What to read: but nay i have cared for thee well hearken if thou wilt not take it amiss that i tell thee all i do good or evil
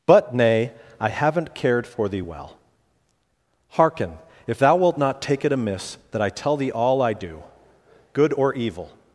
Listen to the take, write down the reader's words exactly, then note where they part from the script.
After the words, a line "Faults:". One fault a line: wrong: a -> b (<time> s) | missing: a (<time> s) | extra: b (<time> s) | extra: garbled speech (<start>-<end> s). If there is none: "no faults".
but nay i haven't cared for thee well hearken if thou wilt not take it amiss that i tell thee all i do good or evil
Faults:
wrong: have -> haven't (1.1 s)